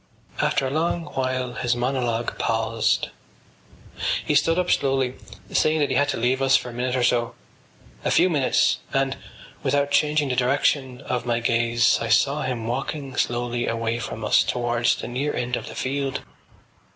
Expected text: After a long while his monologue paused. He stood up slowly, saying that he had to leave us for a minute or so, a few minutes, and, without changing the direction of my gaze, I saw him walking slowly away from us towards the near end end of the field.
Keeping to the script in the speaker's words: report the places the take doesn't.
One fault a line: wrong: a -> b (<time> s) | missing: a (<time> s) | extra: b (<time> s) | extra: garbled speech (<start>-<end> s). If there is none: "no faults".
missing: end (15.6 s)